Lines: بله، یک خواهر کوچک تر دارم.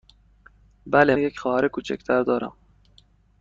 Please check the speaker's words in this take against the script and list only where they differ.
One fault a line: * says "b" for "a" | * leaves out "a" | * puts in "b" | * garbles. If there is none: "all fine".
all fine